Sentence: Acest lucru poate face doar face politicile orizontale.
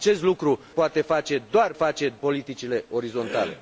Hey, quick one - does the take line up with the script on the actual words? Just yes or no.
yes